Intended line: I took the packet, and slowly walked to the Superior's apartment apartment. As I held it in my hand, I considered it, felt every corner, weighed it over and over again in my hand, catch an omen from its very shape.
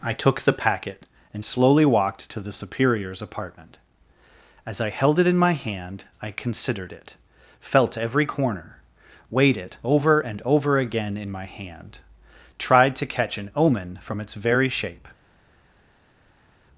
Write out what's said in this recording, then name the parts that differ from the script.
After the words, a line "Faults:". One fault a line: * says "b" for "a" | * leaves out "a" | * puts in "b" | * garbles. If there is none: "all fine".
I took the packet, and slowly walked to the Superior's apartment. As I held it in my hand, I considered it, felt every corner, weighed it over and over again in my hand, tried to catch an omen from its very shape.
Faults:
* leaves out "apartment"
* puts in "tried to"